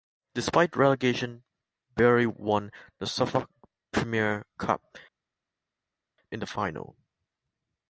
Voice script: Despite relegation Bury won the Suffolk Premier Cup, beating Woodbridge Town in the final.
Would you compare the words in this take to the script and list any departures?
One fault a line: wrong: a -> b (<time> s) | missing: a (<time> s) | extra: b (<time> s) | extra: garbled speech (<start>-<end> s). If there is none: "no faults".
missing: beating Woodbridge Town (5.0 s)